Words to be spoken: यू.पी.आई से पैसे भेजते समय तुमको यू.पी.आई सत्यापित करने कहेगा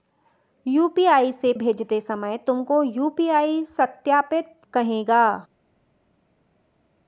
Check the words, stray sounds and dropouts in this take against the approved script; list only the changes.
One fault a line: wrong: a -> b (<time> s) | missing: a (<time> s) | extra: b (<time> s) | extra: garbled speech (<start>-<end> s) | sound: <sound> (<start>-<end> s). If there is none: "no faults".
missing: पैसे (1.5 s)
missing: करने (4.5 s)